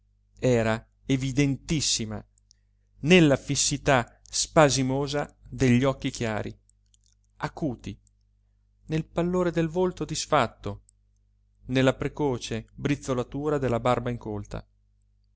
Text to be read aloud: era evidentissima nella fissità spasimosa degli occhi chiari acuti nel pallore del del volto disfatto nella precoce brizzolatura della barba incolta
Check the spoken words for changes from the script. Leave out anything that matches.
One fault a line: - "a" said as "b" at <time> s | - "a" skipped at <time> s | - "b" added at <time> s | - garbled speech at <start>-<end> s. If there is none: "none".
- "del" skipped at 9.7 s